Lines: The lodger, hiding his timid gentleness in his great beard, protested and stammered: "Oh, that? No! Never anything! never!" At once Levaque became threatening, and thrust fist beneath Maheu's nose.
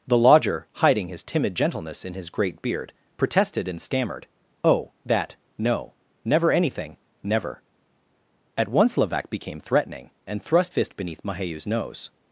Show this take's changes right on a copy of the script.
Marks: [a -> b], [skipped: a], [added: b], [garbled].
The lodger, hiding his timid gentleness in his great beard, protested and stammered: "Oh, that? No! Never anything! never!" At once Levaque became threatening, and thrust fist beneath Maheu's nose.